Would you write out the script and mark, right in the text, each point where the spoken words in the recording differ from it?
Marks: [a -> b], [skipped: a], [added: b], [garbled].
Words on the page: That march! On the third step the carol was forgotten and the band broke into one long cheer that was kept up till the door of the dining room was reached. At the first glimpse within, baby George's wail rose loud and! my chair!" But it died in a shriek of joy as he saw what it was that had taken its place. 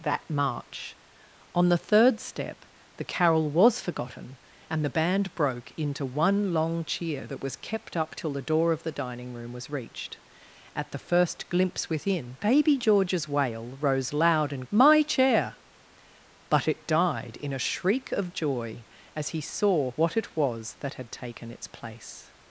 That march! On the third step the carol was forgotten and the band broke into one long cheer that was kept up till the door of the dining room was reached. At the first glimpse within, baby George's wail rose loud and! my chair!" But it died in a shriek of joy as he saw what it was that had taken its place.